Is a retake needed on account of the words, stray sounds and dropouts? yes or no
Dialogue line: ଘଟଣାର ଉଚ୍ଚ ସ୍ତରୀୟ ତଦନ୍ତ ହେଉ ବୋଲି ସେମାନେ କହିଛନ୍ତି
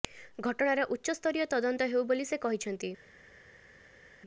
yes